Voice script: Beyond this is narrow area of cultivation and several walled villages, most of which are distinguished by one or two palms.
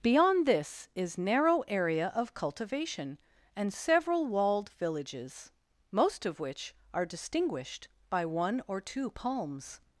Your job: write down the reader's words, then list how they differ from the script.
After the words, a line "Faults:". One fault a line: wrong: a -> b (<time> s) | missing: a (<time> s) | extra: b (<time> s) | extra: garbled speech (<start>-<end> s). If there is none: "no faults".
Beyond this is narrow area of cultivation and several walled villages, most of which are distinguished by one or two palms.
Faults:
no faults